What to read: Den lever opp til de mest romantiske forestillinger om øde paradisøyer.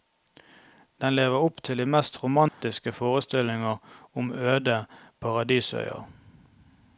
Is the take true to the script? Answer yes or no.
yes